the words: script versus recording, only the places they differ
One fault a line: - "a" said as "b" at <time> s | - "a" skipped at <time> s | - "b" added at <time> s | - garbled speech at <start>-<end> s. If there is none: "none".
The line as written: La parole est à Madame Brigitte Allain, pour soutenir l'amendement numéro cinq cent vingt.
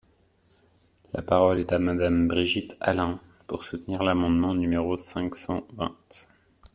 none